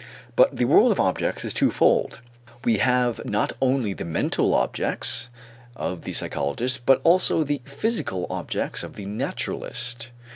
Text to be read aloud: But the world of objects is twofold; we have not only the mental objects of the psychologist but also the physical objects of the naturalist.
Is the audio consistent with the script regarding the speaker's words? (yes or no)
yes